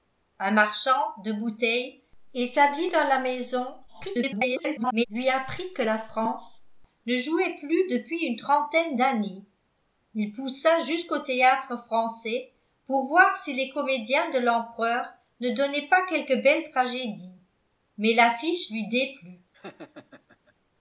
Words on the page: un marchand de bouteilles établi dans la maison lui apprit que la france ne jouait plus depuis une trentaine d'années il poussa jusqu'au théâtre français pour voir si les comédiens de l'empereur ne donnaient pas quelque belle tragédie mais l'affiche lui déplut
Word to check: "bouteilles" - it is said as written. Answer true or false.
true